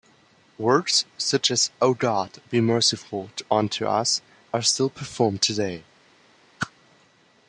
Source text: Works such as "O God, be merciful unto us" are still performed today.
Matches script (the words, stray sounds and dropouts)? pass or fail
fail